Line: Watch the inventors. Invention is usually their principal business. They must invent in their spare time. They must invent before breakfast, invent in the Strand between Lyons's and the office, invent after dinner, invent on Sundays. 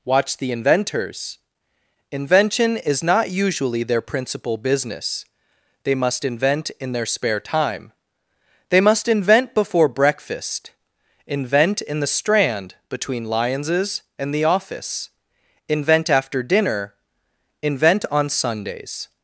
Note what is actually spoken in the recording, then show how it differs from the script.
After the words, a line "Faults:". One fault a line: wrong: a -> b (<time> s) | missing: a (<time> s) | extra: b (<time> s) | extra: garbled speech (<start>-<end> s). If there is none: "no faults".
Watch the inventors. Invention is not usually their principal business. They must invent in their spare time. They must invent before breakfast, invent in the Strand between Lyons's and the office, invent after dinner, invent on Sundays.
Faults:
extra: not (3.0 s)